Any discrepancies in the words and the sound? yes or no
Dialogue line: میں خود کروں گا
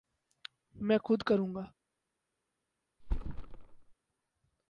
yes